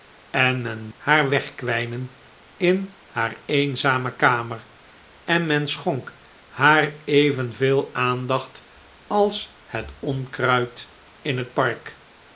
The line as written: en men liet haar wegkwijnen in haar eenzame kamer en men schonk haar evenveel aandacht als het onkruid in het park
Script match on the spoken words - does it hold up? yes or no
no